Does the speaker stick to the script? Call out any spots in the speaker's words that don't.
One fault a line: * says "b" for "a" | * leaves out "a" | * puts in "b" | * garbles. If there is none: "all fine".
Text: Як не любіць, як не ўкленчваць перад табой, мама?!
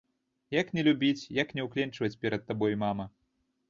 all fine